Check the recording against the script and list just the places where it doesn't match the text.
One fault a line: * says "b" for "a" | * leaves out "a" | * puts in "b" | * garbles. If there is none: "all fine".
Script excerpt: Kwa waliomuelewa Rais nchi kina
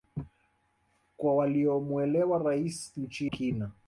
all fine